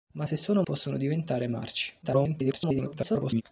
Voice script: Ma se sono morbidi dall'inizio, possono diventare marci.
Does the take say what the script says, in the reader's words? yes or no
no